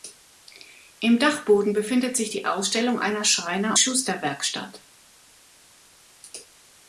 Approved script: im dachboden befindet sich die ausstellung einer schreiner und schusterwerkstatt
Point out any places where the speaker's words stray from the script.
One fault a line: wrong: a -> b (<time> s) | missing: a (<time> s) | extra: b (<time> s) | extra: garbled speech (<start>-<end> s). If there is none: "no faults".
missing: und (3.8 s)